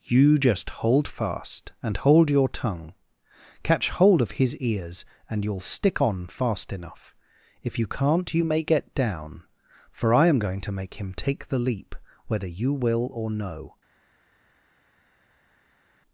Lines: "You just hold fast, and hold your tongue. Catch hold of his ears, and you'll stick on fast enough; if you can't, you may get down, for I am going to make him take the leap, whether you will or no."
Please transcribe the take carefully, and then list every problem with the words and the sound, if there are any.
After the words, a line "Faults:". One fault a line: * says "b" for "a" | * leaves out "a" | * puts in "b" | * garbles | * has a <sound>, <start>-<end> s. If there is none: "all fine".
"You just hold fast, and hold your tongue. Catch hold of his ears, and you'll stick on fast enough; if you can't, you may get down, for I am going to make him take the leap, whether you will or no."
Faults:
all fine